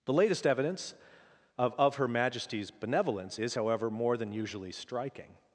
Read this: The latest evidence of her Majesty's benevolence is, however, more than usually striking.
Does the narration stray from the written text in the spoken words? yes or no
yes